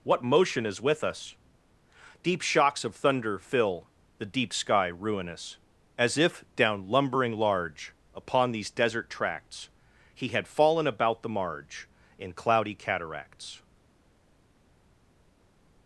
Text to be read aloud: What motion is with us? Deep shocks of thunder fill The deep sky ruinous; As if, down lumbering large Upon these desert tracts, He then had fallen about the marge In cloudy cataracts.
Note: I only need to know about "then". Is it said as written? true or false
false